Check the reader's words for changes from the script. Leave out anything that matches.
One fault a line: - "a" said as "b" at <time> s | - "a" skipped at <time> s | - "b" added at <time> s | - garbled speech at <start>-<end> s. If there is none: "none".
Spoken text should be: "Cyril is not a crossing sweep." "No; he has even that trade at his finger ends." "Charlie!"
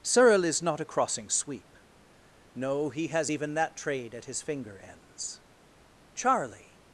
none